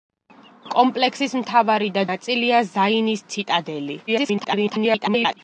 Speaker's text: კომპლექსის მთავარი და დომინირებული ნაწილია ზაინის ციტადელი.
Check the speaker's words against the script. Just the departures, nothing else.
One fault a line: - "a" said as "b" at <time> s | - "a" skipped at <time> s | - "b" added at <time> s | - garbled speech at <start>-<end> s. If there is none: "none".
- "დომინირებული" skipped at 2.0 s
- garbled speech at 4.1-5.4 s